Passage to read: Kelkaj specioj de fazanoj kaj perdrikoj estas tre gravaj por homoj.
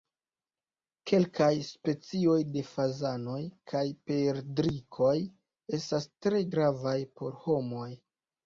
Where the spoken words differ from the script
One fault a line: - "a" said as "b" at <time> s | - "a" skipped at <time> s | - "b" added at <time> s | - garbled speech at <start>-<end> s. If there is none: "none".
none